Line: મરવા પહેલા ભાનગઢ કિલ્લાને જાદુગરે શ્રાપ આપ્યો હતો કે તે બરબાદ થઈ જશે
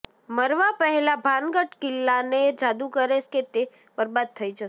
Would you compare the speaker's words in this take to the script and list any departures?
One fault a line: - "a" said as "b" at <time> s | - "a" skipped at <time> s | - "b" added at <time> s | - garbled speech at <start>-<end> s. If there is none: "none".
- "શ્રાપ આપ્યો હતો" skipped at 3.2 s